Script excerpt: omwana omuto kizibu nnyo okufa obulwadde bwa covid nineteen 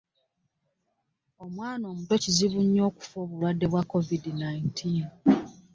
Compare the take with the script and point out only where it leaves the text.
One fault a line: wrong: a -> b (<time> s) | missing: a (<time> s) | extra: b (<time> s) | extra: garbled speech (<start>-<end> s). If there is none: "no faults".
no faults